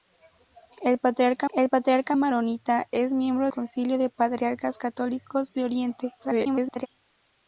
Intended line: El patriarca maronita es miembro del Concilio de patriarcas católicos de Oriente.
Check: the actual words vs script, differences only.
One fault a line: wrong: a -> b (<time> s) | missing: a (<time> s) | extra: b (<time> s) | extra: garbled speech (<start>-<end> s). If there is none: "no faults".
extra: el patriarca (1.5 s)
missing: del (3.5 s)
extra: garbled speech (6.2-6.9 s)